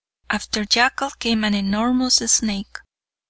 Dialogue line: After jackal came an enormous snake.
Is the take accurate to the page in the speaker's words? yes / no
yes